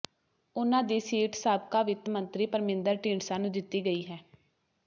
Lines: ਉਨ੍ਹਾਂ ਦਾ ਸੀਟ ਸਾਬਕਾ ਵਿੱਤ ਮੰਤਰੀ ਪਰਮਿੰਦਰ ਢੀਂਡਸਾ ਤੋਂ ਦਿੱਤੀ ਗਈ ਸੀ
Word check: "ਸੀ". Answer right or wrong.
wrong